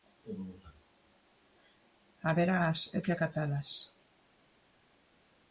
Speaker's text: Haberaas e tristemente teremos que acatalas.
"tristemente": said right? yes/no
no